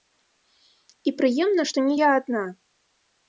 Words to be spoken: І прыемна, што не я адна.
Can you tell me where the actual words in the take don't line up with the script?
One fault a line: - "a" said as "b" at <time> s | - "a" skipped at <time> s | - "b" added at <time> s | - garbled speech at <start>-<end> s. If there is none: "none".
none